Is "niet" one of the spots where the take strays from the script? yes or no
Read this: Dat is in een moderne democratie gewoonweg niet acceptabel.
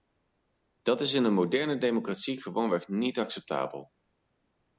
no